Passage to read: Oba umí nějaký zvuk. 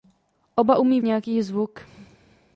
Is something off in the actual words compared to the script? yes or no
no